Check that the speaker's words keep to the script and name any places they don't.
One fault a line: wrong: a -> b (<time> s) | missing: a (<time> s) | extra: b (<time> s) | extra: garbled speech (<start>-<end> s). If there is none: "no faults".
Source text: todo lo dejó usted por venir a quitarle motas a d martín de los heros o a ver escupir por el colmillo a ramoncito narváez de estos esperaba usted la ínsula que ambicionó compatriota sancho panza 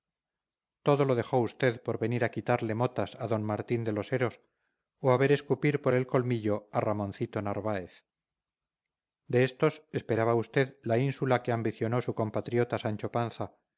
extra: su (12.0 s)